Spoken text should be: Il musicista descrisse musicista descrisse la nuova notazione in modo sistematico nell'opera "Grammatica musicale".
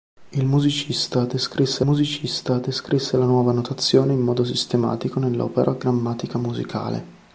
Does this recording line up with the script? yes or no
yes